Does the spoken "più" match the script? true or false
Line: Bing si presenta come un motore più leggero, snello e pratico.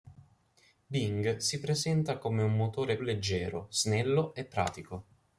false